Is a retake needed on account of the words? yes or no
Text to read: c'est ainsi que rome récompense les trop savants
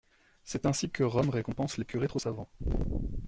yes